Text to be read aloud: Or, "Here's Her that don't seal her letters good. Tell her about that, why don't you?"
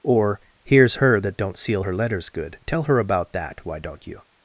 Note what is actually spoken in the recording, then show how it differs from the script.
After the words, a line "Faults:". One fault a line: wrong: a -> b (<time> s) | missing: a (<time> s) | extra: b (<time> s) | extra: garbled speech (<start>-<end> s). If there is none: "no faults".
Or, "Here's Her that don't seal her letters good. Tell her about that, why don't you?"
Faults:
no faults